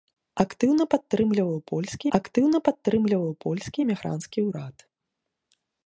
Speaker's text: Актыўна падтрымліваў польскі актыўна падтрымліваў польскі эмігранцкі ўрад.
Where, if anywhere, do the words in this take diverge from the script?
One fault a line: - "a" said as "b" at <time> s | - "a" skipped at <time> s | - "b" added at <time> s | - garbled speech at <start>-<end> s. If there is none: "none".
none